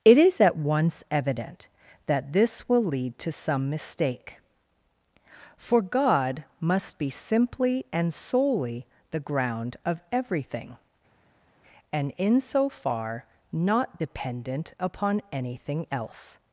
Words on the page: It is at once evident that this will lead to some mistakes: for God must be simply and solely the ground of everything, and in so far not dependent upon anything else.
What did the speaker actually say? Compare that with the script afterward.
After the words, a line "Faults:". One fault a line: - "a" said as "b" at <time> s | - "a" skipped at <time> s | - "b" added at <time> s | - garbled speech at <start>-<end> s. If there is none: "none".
It is at once evident that this will lead to some mistake: for God must be simply and solely the ground of everything, and in so far not dependent upon anything else.
Faults:
- "mistakes" said as "mistake" at 3.7 s